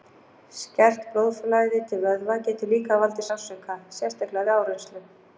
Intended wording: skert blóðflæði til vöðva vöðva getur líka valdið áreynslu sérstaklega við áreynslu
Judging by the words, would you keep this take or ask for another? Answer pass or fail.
fail